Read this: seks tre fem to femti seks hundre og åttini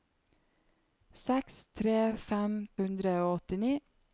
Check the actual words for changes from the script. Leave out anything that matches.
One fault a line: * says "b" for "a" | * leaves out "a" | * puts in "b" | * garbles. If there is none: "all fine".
* leaves out "to femti seks"